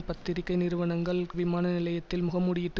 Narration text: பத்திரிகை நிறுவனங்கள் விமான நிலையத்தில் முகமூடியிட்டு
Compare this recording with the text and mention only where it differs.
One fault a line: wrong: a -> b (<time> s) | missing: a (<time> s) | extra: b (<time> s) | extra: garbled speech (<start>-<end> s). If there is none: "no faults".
no faults